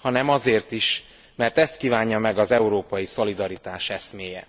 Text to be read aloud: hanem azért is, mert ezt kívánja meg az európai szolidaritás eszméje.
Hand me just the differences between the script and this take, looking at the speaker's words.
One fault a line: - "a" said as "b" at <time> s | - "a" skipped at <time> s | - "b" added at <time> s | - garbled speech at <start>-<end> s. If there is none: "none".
none